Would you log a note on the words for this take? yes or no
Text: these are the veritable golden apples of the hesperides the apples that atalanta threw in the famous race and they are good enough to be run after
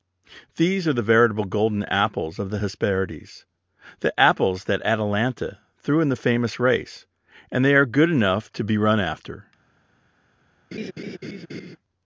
no